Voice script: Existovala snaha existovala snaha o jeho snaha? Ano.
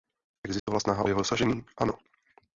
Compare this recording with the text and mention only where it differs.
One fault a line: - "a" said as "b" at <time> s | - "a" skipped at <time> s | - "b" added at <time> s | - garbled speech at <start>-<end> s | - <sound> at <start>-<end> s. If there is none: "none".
- dropout at 0.6-0.7 s
- "existovala snaha" skipped at 1.1 s
- "snaha" said as "dosažení" at 1.2 s